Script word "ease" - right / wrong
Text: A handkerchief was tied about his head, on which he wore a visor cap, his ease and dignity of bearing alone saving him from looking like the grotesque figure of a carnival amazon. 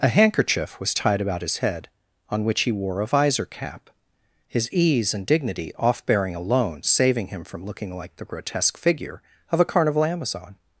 right